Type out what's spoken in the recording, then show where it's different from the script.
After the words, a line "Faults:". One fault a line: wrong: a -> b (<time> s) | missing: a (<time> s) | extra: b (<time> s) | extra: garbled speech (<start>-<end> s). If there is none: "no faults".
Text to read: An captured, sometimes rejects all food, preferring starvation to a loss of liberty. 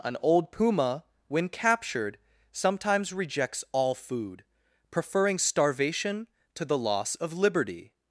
An old puma, when captured, sometimes rejects all food, preferring starvation to the loss of liberty.
Faults:
extra: old puma when (0.2 s)
wrong: a -> the (6.7 s)